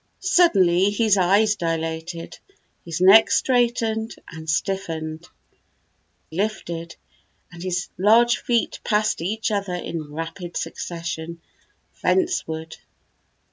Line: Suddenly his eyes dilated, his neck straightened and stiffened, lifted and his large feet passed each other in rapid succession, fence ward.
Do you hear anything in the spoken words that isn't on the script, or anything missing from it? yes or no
no